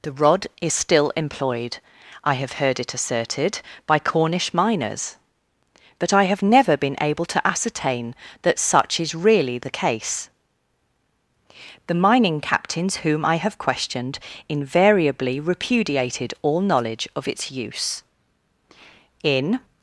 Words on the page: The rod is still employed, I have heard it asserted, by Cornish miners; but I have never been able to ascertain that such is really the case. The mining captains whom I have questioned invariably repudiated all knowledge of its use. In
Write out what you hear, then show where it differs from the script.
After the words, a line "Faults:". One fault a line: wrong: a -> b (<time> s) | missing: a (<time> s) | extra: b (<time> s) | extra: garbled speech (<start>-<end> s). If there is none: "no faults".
The rod is still employed, I have heard it asserted, by Cornish miners; but I have never been able to ascertain that such is really the case. The mining captains whom I have questioned invariably repudiated all knowledge of its use. In
Faults:
no faults